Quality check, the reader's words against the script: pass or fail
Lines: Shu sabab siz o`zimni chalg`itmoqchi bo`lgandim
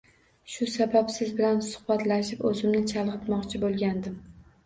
fail